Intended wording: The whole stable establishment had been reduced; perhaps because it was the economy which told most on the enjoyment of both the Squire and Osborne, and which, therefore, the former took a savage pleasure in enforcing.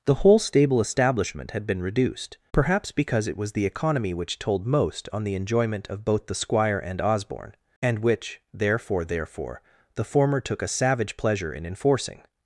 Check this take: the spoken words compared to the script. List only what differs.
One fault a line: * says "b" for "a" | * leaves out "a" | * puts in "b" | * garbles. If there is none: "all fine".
* puts in "therefore"